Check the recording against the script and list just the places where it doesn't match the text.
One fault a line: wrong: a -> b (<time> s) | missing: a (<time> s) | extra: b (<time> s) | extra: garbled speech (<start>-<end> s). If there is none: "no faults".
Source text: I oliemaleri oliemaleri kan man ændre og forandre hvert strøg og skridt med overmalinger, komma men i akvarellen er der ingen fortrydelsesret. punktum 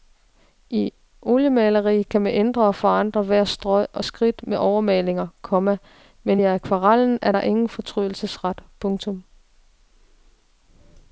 missing: oliemaleri (2.0 s)